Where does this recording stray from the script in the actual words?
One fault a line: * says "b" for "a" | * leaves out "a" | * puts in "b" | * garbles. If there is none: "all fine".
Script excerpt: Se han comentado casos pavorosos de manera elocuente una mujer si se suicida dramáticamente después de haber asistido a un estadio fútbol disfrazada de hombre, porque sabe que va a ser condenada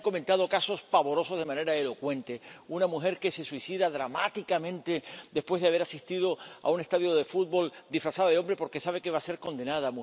* says "que" for "si"
* puts in "de"